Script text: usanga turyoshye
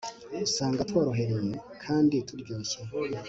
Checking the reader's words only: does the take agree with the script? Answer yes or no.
no